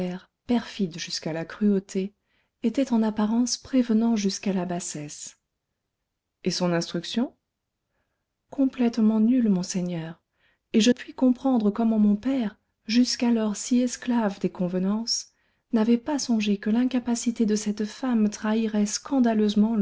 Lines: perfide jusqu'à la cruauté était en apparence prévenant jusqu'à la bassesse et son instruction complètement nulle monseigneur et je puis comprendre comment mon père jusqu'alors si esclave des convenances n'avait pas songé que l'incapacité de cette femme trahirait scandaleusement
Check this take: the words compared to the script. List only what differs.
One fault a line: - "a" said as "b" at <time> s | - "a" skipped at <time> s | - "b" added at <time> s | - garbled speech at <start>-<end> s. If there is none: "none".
none